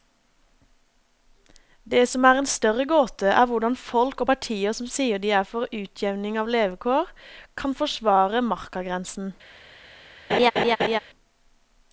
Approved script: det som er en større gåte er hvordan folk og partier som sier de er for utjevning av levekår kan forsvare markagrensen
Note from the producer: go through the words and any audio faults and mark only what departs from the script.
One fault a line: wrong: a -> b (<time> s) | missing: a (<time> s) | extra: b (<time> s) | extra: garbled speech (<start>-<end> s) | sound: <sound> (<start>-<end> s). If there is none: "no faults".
sound: laugh (10.3-11.0 s)